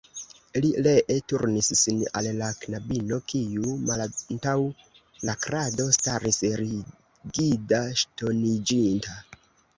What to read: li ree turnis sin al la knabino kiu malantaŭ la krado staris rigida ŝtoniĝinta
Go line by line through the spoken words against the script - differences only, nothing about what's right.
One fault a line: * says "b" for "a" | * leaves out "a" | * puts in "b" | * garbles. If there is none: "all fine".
all fine